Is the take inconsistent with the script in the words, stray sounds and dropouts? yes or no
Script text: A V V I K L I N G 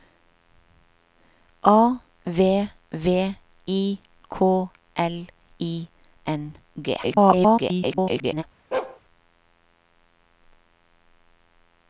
yes